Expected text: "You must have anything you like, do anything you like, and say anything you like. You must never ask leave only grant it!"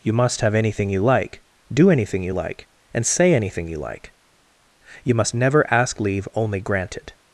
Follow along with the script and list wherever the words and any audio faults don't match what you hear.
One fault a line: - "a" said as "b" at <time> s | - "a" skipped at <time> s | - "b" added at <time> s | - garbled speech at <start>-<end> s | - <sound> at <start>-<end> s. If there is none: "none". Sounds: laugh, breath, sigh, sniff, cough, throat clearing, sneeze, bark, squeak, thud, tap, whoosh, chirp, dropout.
none